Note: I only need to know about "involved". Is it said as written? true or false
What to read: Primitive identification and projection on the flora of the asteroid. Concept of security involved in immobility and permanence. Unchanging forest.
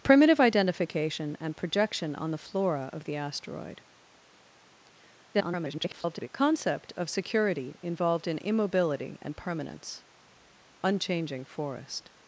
true